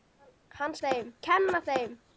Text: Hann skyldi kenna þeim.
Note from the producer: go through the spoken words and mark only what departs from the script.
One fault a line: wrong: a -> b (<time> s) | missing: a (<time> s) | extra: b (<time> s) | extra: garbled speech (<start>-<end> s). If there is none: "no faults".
wrong: skyldi -> þeim (0.9 s)